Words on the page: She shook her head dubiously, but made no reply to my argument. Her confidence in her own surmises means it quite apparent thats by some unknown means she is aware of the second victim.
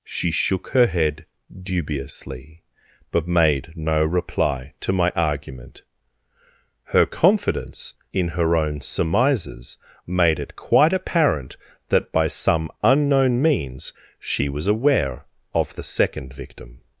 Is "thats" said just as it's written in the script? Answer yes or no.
no